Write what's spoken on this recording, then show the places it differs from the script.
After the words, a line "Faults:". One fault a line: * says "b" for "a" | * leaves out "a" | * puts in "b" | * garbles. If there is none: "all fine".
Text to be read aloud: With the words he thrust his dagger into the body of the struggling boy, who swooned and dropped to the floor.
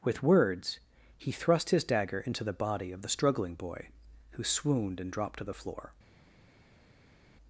With words he thrust his dagger into the body of the struggling boy, who swooned and dropped to the floor.
Faults:
* leaves out "the"